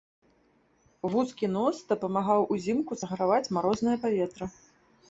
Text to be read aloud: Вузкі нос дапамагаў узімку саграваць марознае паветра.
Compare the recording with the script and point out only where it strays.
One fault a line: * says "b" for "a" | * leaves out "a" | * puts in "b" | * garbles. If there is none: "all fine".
all fine